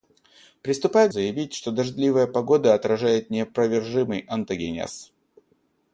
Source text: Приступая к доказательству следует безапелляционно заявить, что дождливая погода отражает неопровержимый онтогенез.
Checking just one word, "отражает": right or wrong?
right